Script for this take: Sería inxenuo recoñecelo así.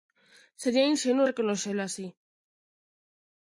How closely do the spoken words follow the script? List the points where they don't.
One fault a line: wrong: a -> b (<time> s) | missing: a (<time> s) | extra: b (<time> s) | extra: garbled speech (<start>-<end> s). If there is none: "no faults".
no faults